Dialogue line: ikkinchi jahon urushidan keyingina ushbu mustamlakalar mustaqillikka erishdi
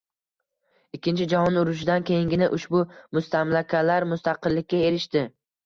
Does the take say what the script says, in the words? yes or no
yes